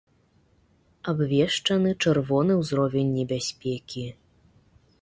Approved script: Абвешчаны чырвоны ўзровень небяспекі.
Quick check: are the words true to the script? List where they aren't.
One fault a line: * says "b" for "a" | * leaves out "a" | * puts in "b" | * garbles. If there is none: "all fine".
all fine